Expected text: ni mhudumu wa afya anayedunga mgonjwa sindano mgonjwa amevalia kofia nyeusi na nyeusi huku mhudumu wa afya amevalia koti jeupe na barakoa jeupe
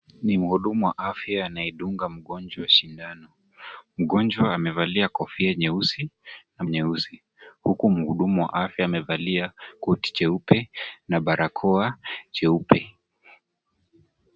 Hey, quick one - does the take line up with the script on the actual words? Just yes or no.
yes